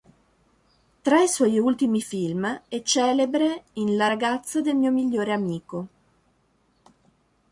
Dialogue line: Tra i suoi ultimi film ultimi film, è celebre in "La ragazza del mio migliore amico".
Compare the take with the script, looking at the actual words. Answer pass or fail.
fail